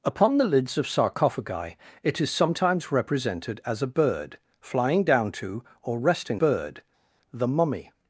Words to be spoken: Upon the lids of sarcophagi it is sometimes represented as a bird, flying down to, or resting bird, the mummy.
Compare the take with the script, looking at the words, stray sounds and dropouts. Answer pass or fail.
pass